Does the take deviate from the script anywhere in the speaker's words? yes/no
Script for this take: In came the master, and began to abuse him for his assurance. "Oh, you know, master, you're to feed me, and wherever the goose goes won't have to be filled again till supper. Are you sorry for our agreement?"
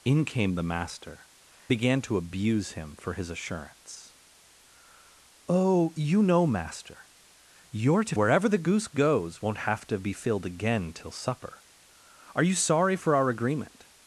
yes